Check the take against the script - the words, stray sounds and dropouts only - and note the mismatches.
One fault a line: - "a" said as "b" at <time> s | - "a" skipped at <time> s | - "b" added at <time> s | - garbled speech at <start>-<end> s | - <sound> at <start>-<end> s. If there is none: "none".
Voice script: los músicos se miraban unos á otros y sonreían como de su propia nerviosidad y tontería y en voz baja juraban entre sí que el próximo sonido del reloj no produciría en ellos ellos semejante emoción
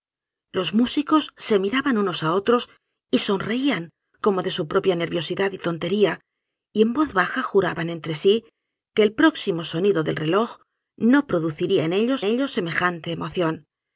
none